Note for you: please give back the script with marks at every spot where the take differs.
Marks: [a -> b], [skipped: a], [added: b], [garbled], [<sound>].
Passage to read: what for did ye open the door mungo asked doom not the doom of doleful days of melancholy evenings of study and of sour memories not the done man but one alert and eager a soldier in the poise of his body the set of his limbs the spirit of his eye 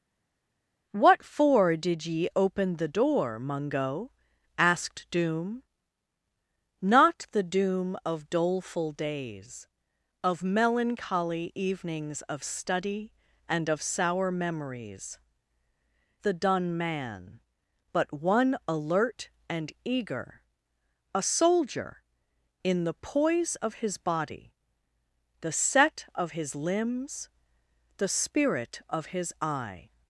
what for did ye open the door mungo asked doom not the doom of doleful days of melancholy evenings of study and of sour memories [skipped: not] the done man but one alert and eager a soldier in the poise of his body the set of his limbs the spirit of his eye